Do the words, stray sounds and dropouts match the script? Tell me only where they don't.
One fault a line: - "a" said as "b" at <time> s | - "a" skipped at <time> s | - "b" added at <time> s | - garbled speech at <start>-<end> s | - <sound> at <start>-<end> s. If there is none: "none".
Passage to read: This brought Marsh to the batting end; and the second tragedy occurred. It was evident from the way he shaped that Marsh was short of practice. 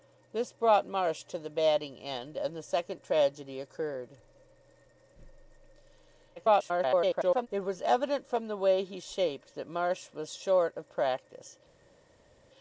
- garbled speech at 6.4-7.5 s